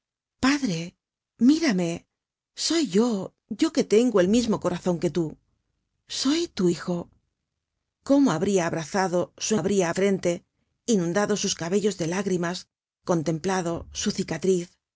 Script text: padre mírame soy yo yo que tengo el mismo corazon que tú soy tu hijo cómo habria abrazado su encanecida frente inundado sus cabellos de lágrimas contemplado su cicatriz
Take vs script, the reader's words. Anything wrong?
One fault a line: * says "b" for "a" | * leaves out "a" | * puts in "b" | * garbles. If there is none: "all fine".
* says "habria" for "encanecida"